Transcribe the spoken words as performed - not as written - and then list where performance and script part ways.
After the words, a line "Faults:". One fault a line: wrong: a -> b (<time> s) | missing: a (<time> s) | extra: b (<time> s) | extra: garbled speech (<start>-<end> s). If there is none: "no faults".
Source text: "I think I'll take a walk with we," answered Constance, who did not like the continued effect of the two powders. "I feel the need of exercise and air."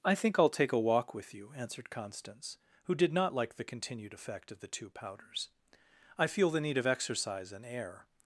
"I think I'll take a walk with you," answered Constance, who did not like the continued effect of the two powders. "I feel the need of exercise and air."
Faults:
wrong: we -> you (1.3 s)